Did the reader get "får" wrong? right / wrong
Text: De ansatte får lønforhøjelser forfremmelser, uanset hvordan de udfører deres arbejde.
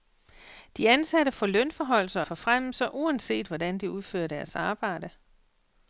right